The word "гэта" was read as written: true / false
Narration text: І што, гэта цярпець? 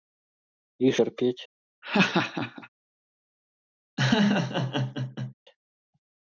false